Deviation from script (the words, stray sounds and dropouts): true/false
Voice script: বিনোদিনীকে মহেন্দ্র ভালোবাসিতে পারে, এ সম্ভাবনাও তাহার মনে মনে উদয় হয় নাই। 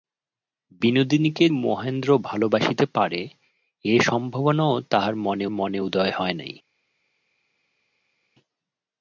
false